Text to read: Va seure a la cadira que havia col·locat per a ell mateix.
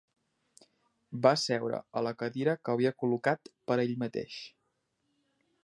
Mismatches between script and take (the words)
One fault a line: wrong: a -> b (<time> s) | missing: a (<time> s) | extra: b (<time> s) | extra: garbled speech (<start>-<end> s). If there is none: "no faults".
no faults